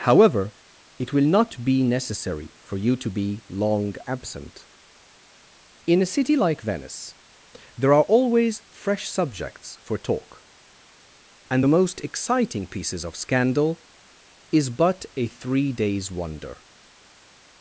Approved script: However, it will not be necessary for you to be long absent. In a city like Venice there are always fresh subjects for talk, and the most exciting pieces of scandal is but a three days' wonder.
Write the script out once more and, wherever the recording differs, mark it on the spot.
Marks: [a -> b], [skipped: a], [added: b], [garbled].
However, it will not be necessary for you to be long absent. In a city like Venice there are always fresh subjects for talk, and the most exciting pieces of scandal is but a three days' wonder.